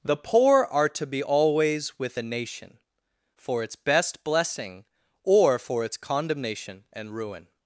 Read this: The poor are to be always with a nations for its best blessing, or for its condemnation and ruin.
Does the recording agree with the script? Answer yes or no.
no